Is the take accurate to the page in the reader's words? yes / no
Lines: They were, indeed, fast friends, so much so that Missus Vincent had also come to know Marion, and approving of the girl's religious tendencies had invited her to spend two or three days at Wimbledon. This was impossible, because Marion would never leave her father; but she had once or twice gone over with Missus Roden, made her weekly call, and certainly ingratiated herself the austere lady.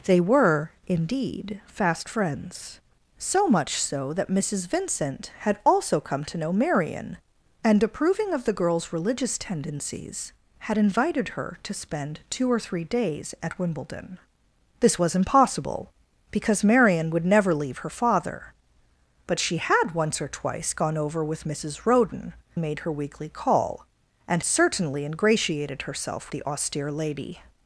yes